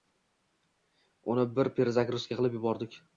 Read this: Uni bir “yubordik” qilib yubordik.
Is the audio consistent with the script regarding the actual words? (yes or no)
no